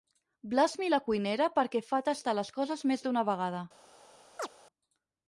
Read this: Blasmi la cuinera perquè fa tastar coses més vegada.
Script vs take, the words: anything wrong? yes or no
yes